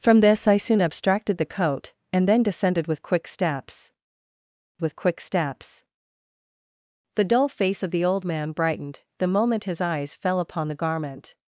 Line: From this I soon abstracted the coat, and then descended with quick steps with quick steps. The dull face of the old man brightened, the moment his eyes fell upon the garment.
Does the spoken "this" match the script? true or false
true